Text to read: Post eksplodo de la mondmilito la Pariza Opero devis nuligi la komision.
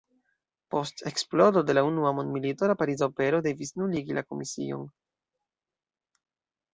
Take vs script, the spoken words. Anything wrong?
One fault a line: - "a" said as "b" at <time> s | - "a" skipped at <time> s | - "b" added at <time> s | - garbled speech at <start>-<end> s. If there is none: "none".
- "unua" added at 1.9 s